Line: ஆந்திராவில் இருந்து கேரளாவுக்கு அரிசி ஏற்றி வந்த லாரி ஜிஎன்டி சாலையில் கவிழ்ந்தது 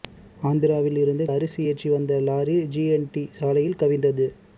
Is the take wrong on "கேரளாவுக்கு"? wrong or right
wrong